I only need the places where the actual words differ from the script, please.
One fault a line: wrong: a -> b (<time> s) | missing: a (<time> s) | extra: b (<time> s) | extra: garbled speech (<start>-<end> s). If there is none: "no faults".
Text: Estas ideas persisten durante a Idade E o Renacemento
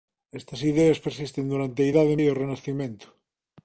no faults